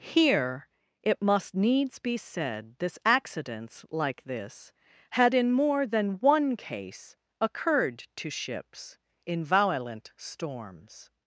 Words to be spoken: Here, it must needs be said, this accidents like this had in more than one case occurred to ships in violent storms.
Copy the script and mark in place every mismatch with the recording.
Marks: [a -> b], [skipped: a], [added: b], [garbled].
Here, it must needs be said, this accidents like this had in more than one case occurred to ships in violent storms.